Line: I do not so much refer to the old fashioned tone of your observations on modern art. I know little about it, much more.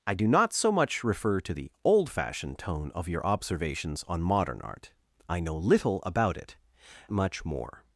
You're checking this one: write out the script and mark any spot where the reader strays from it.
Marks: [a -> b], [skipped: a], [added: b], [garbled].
I do not so much refer to the old fashioned tone of your observations on modern art. I know little about it, much more.